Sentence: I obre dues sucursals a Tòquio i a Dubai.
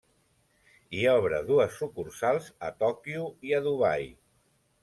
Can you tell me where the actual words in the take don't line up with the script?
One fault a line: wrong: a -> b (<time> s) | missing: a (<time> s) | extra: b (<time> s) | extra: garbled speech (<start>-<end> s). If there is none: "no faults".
no faults